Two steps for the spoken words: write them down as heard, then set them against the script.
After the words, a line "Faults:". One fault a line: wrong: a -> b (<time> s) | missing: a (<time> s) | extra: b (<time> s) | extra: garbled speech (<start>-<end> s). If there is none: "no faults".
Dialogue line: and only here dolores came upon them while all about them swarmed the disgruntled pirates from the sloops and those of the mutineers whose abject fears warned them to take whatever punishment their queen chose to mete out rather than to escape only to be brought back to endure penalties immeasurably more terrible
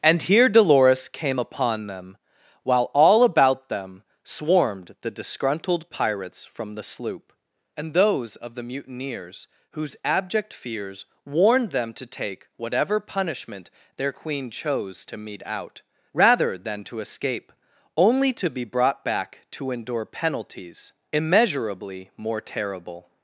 and here dolores came upon them while all about them swarmed the disgruntled pirates from the sloop and those of the mutineers whose abject fears warned them to take whatever punishment their queen chose to mete out rather than to escape only to be brought back to endure penalties immeasurably more terrible
Faults:
missing: only (0.2 s)
wrong: sloops -> sloop (6.8 s)